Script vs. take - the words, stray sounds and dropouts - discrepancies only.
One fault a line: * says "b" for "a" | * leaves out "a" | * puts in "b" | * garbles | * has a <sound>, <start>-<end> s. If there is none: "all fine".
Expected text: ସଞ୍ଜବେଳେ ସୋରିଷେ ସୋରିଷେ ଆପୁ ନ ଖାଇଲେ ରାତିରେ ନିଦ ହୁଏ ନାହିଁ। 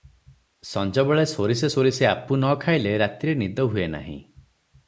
all fine